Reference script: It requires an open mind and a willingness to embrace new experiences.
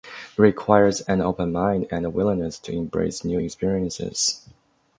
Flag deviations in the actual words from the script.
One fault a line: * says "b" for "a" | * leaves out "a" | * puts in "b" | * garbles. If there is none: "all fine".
all fine